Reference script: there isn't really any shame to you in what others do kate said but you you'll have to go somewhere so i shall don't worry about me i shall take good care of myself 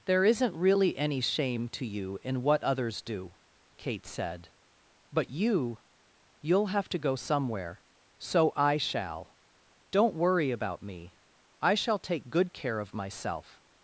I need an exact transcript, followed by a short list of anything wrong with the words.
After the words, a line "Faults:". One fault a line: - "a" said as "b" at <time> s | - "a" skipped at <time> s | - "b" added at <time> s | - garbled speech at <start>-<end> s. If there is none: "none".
there isn't really any shame to you in what others do kate said but you you'll have to go somewhere so i shall don't worry about me i shall take good care of myself
Faults:
none